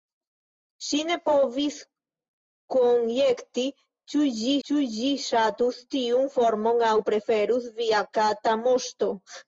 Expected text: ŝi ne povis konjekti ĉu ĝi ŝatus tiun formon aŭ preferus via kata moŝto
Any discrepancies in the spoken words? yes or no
yes